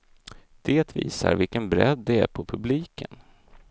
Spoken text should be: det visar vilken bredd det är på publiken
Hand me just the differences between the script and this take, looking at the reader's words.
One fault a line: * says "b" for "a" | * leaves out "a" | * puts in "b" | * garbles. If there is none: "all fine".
all fine